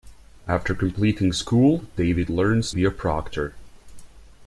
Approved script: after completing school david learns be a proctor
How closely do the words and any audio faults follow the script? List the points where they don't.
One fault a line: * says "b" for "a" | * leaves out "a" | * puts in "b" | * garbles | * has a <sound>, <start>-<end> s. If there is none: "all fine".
all fine